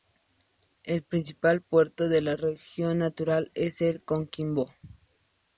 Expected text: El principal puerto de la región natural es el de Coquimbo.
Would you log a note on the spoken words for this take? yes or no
no